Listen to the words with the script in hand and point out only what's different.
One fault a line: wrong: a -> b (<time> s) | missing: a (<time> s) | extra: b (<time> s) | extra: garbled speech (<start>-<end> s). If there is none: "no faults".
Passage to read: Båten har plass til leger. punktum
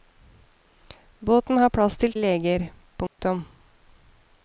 no faults